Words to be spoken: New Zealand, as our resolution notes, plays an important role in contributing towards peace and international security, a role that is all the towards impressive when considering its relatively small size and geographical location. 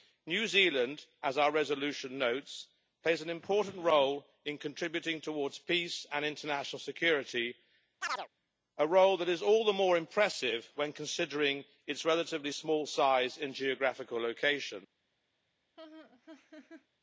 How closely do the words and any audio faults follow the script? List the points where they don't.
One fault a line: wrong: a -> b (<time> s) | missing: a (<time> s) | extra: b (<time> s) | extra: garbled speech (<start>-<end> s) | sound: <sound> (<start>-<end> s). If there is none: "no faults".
sound: chirp (8.0-8.3 s)
wrong: towards -> more (9.7 s)
sound: laugh (15.8-16.9 s)